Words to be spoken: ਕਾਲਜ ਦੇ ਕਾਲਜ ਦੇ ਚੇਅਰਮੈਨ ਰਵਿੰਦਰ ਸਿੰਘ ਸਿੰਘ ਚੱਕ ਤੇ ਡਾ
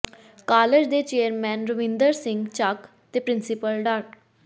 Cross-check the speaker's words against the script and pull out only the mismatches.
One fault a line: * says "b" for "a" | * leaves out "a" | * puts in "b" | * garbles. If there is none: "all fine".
* leaves out "ਕਾਲਜ ਦੇ"
* leaves out "ਸਿੰਘ"
* puts in "ਪ੍ਰਿੰਸੀਪਲ"